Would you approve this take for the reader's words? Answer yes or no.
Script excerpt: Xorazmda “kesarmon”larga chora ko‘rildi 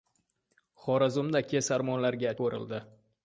no